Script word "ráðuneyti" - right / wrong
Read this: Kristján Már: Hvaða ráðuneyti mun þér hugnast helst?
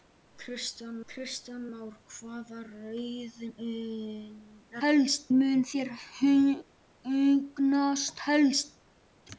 wrong